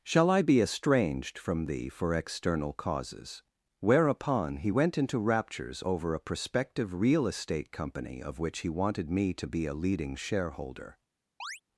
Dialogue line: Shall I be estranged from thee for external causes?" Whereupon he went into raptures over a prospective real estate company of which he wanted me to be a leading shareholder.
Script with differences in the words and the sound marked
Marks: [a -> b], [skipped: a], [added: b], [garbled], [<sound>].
Shall I be estranged from thee for external causes?" Whereupon he went into raptures over a prospective real estate company of which he wanted me to be a leading shareholder. [chirp]